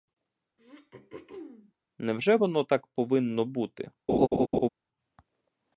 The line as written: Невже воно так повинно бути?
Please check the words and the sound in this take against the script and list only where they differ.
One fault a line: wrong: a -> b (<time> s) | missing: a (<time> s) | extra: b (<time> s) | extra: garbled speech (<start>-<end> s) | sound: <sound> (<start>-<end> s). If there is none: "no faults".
sound: throat clearing (0.6-1.7 s)
sound: laugh (4.1-4.7 s)